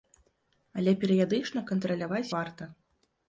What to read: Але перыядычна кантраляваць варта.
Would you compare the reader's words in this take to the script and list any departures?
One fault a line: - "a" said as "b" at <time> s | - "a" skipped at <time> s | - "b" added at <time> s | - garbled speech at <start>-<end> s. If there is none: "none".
none